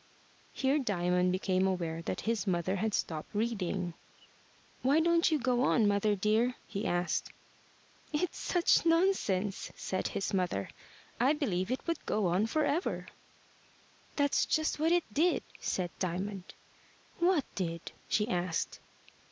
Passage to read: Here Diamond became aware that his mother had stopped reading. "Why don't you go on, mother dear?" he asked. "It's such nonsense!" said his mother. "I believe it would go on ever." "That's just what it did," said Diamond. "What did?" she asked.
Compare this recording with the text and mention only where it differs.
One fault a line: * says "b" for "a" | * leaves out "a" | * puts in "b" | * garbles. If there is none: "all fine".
* puts in "for"